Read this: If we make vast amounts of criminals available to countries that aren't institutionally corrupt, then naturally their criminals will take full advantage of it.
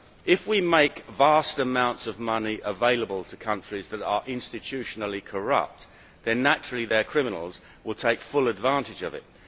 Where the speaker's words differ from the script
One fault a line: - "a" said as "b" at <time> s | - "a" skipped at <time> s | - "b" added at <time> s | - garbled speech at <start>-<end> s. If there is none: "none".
- "criminals" said as "money" at 2.2 s
- "aren't" said as "are" at 4.0 s